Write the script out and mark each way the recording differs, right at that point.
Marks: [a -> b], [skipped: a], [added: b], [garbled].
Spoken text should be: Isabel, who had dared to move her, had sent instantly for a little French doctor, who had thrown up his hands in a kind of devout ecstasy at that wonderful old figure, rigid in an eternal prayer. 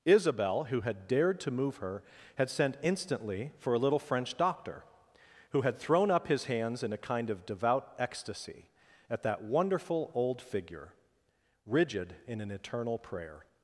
Isabel, who had dared to move her, had sent instantly for a little French doctor, who had thrown up his hands in a kind of devout ecstasy at that wonderful old figure, rigid in an eternal prayer.